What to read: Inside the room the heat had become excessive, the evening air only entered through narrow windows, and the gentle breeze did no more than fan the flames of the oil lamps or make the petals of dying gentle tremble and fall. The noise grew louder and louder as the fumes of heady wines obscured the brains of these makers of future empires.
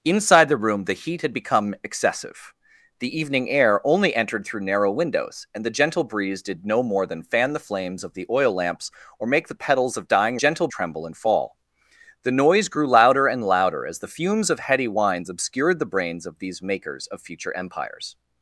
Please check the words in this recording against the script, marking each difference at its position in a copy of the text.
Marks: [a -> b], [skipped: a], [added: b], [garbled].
Inside the room the heat had become excessive, the evening air only entered through narrow windows, and the gentle breeze did no more than fan the flames of the oil lamps or make the petals of dying gentle tremble and fall. The noise grew louder and louder as the fumes of heady wines obscured the brains of these makers of future empires.